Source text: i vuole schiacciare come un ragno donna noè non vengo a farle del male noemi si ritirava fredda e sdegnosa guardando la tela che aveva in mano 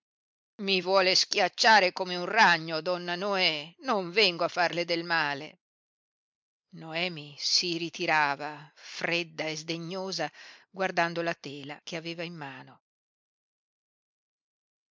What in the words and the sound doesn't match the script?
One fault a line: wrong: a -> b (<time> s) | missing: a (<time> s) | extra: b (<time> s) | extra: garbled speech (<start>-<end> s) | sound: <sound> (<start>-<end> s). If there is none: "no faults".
no faults